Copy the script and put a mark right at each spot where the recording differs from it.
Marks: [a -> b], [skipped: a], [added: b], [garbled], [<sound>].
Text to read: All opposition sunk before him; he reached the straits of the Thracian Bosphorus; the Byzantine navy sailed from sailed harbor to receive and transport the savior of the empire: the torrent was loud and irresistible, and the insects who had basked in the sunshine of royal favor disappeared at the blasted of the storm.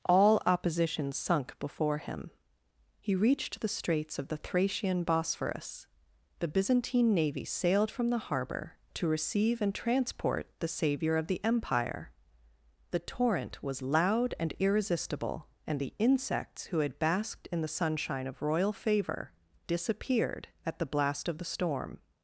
All opposition sunk before him; he reached the straits of the Thracian Bosphorus; the Byzantine navy sailed from [sailed -> the] harbor to receive and transport the savior of the empire: the torrent was loud and irresistible, and the insects who had basked in the sunshine of royal favor disappeared at the [blasted -> blast] of the storm.